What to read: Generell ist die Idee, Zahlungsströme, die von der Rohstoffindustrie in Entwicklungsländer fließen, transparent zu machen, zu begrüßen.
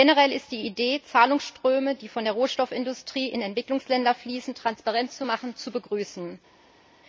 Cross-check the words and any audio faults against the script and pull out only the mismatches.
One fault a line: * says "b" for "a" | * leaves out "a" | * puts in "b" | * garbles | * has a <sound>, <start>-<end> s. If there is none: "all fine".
all fine